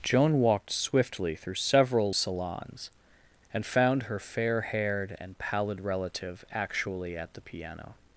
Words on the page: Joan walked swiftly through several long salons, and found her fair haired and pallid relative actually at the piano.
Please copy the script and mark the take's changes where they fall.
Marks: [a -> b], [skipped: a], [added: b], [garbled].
Joan walked swiftly through several [skipped: long] salons, and found her fair haired and pallid relative actually at the piano.